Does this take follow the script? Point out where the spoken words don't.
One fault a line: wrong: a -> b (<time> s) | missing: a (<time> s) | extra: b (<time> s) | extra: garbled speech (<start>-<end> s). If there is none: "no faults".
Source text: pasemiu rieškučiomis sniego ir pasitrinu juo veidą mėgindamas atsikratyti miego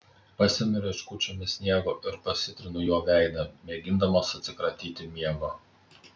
no faults